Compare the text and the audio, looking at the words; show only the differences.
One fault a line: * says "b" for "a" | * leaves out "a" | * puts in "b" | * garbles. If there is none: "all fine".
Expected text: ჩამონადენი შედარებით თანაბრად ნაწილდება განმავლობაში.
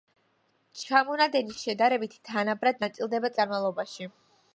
all fine